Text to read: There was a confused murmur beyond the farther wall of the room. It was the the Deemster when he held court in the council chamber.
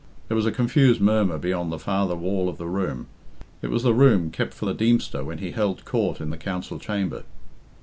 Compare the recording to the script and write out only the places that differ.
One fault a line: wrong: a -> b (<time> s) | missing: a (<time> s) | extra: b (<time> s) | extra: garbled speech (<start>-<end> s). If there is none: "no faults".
extra: room kept for (3.9 s)